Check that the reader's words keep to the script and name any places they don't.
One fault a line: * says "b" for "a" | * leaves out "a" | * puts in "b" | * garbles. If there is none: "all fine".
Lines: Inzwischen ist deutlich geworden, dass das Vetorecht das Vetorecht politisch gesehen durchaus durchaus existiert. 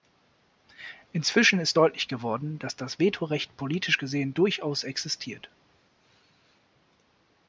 * leaves out "das Vetorecht"
* leaves out "durchaus"